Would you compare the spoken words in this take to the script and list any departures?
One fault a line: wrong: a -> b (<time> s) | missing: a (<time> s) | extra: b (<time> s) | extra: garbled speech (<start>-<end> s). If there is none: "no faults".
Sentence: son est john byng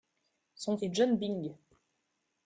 no faults